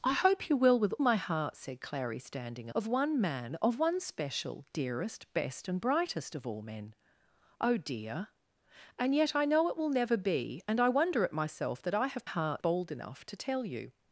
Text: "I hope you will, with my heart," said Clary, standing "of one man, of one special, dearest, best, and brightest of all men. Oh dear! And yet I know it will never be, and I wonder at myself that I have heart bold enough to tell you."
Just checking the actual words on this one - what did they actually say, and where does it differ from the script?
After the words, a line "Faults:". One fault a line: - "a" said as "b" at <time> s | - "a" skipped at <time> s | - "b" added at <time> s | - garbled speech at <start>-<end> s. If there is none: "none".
"I hope you will, with my heart," said Clary, standing "of one man, of one special, dearest, best, and brightest of all men. Oh dear! And yet I know it will never be, and I wonder at myself that I have heart bold enough to tell you."
Faults:
none